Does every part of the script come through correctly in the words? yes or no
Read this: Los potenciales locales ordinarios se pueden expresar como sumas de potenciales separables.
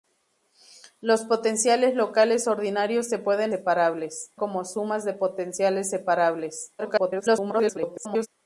no